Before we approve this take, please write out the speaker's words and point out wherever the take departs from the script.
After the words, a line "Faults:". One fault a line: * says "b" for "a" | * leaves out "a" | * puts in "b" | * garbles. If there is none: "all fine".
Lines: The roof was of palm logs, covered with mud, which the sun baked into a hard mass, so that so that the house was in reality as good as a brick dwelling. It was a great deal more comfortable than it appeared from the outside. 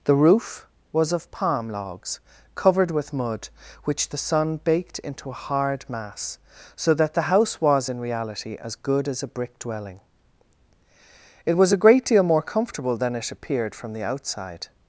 The roof was of palm logs, covered with mud, which the sun baked into a hard mass, so that the house was in reality as good as a brick dwelling. It was a great deal more comfortable than it appeared from the outside.
Faults:
* leaves out "so that"